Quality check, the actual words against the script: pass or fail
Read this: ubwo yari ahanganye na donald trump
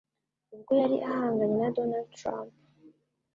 pass